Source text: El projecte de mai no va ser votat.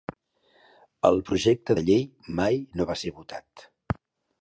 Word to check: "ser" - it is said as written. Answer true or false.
true